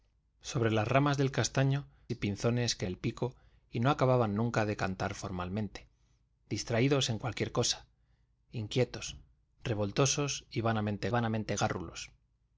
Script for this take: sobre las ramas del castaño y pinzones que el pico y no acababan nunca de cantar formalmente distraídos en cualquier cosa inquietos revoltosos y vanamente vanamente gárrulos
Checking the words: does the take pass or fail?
pass